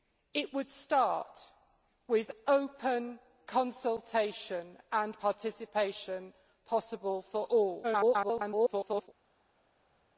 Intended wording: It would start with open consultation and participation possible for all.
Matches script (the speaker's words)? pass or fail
fail